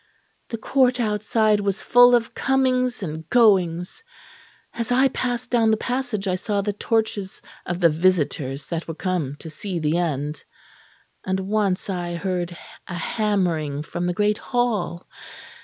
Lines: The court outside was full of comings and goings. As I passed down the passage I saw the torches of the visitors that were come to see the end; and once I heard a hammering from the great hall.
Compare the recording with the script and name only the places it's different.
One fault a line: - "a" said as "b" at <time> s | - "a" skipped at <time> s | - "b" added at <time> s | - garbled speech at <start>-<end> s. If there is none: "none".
none